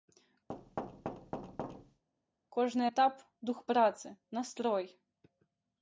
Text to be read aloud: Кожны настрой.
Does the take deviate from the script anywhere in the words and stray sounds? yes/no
yes